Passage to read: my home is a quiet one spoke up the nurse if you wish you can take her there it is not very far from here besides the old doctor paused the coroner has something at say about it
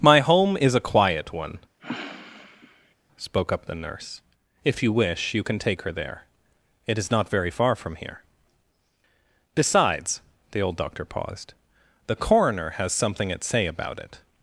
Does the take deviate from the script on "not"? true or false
false